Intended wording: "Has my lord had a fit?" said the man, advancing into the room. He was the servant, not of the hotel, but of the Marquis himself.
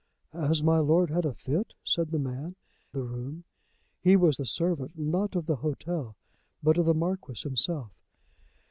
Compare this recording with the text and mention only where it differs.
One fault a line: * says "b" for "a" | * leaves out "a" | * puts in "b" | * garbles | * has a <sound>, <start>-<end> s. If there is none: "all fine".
* leaves out "advancing into"